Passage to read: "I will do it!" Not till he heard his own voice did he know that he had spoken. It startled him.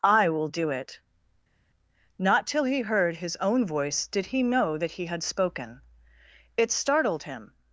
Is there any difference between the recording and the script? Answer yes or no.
no